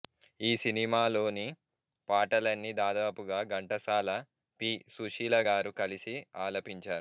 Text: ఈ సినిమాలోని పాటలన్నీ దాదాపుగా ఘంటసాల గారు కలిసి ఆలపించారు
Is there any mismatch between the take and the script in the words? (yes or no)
yes